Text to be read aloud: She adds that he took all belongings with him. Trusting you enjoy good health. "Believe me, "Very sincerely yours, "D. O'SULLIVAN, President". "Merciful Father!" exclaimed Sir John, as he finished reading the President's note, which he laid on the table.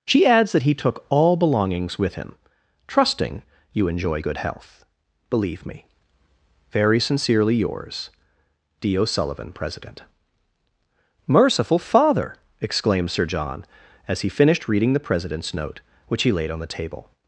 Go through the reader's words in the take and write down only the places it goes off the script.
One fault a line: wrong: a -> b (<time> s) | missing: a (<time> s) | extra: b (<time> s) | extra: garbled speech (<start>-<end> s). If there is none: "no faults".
no faults